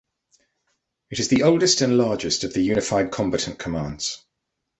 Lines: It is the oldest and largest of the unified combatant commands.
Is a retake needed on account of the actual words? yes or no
no